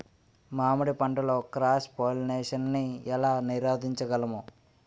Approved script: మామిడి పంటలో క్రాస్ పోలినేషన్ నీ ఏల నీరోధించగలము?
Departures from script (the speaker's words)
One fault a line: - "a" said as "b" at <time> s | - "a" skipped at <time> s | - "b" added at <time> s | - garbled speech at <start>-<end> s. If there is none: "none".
none